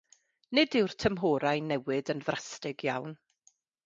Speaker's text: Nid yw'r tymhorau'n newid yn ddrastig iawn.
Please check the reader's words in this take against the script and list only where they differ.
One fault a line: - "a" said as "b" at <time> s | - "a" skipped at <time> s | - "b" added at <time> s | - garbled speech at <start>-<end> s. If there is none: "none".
none